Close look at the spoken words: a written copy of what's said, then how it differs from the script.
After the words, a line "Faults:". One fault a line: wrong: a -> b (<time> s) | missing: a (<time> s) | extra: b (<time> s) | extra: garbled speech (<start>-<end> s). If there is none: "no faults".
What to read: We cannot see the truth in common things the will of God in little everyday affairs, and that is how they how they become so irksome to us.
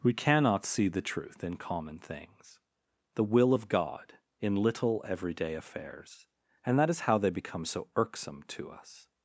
We cannot see the truth in common things the will of God in little everyday affairs, and that is how they become so irksome to us.
Faults:
missing: how they (7.3 s)